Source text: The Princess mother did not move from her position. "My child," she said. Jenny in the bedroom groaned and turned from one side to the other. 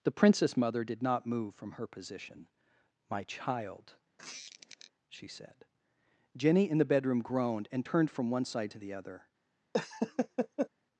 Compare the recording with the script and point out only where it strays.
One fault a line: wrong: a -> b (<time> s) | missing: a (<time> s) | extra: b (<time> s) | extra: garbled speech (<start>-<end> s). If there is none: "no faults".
no faults